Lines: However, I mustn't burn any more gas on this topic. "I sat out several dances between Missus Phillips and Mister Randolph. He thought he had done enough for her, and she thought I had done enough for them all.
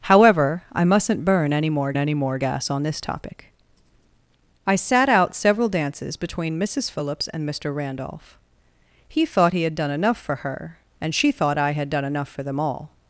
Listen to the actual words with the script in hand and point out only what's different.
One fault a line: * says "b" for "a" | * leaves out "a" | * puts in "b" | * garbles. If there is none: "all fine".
* puts in "any more"